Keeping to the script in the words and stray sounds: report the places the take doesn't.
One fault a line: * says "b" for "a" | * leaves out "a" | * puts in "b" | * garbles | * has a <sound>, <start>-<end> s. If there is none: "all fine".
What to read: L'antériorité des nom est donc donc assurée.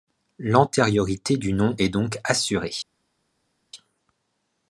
* says "du" for "des"
* leaves out "donc"